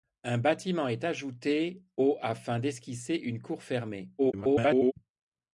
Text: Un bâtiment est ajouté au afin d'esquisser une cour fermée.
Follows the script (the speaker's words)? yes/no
no